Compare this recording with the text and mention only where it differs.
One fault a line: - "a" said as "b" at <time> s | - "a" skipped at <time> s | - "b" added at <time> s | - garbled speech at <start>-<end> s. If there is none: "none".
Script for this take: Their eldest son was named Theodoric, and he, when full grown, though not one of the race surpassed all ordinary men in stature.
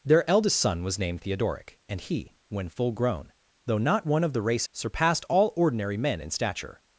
none